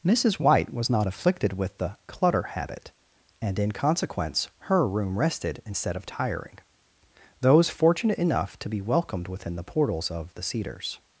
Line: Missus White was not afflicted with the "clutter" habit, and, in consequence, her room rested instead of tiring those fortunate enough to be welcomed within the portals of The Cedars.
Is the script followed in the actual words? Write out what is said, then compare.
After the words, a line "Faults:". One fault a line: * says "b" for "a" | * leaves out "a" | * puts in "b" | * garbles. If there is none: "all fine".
Missus White was not afflicted with the "clutter" habit, and, in consequence, her room rested instead of tiring those fortunate enough to be welcomed within the portals of The Cedars.
Faults:
all fine